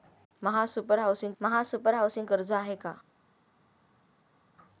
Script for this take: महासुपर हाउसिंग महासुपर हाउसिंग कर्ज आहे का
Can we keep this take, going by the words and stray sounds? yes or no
yes